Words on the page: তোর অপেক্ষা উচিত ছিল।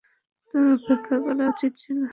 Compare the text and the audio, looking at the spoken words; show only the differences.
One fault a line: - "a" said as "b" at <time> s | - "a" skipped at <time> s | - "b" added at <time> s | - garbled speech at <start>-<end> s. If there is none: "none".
- "করা" added at 1.2 s